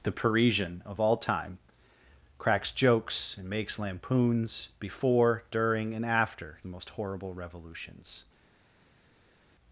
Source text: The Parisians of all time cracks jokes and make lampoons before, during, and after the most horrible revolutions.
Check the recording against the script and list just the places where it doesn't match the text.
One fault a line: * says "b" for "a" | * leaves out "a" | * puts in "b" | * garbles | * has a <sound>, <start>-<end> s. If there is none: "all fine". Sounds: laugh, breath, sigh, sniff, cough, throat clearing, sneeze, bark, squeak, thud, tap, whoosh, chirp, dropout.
* says "Parisian" for "Parisians"
* says "makes" for "make"